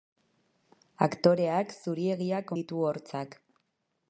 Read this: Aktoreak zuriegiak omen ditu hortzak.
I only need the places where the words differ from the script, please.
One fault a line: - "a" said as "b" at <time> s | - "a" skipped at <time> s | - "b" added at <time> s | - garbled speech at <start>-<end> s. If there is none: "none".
- "omen" skipped at 2.5 s